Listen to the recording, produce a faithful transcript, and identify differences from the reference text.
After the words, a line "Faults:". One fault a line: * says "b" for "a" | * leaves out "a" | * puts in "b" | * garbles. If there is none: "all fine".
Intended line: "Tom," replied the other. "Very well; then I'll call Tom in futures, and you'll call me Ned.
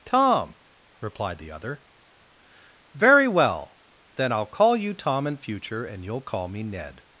"Tom," replied the other. "Very well; then I'll call you Tom in future, and you'll call me Ned.
Faults:
* puts in "you"
* says "future" for "futures"